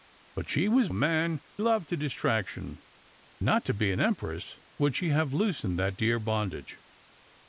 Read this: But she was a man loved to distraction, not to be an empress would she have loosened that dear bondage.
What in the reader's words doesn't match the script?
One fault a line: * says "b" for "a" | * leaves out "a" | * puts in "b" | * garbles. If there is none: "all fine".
all fine